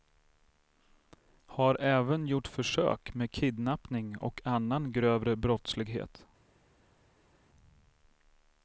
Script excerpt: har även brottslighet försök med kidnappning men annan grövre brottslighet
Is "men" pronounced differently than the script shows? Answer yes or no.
yes